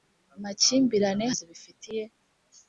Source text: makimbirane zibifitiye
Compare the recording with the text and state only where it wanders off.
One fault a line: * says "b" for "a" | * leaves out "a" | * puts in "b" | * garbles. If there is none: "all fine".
all fine